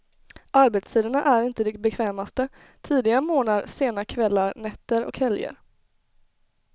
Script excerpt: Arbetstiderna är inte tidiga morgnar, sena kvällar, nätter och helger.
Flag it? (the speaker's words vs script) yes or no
yes